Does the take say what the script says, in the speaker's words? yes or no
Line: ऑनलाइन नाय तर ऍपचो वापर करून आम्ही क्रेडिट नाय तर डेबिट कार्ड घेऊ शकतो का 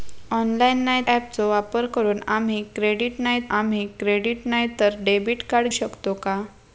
no